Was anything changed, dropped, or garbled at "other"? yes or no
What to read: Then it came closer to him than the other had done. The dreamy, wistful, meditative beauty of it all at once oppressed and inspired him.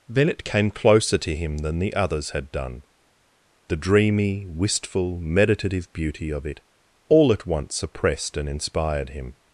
yes